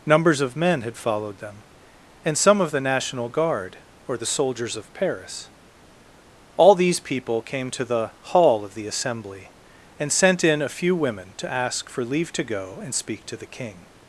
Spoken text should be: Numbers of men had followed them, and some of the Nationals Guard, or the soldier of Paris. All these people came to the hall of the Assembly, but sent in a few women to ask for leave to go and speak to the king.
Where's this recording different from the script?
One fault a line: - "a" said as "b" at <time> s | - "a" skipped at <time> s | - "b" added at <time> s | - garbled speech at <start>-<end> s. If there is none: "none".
- "Nationals" said as "National" at 2.8 s
- "soldier" said as "soldiers" at 4.2 s
- "but" said as "and" at 10.0 s